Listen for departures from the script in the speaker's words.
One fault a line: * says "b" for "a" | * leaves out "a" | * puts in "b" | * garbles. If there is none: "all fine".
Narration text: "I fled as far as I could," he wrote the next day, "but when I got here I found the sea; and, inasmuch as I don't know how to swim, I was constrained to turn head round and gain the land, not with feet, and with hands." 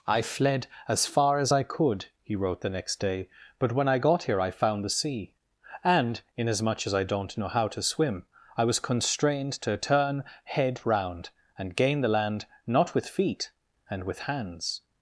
all fine